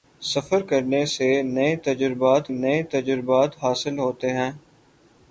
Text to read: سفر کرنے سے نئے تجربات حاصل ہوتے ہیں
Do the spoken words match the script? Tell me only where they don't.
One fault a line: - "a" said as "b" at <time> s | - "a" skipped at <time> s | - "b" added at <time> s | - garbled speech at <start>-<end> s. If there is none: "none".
- "نئے تجربات" added at 2.5 s